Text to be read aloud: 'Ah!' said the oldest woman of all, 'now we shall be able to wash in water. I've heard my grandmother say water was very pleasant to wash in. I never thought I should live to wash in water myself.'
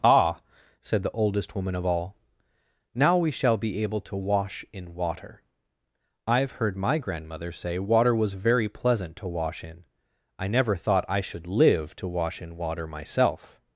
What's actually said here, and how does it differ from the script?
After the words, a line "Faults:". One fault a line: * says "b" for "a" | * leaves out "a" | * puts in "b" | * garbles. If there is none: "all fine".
'Ah!' said the oldest woman of all, 'now we shall be able to wash in water. I've heard my grandmother say water was very pleasant to wash in. I never thought I should live to wash in water myself.'
Faults:
all fine